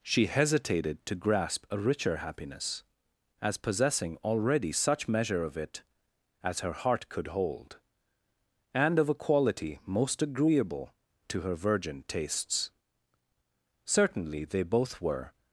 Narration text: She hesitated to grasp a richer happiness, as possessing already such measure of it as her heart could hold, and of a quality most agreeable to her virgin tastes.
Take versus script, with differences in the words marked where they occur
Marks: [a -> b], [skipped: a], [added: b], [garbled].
She hesitated to grasp a richer happiness, as possessing already such measure of it as her heart could hold, and of a quality most agreeable to her virgin tastes. [added: Certainly they both were]